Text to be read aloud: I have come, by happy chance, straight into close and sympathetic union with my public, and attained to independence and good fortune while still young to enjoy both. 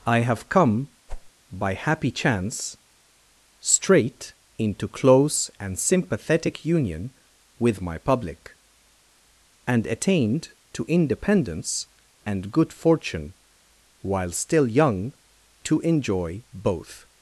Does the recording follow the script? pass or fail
pass